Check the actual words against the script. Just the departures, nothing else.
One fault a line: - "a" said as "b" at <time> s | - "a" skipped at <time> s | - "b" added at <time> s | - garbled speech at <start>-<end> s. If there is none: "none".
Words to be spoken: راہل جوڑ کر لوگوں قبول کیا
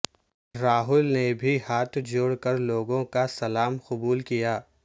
- "نے بھی ہاتھ" added at 1.1 s
- "کا سلام" added at 3.1 s